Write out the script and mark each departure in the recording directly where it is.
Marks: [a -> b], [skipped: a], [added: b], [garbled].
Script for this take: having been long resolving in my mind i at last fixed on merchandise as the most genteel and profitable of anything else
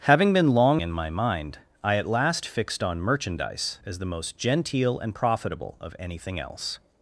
having been long [skipped: resolving] in my mind i at last fixed on merchandise as the most genteel and profitable of anything else